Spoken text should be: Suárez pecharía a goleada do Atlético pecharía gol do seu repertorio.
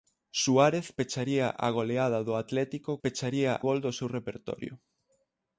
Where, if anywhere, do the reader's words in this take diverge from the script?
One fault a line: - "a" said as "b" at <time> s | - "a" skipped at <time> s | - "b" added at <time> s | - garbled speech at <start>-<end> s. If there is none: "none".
none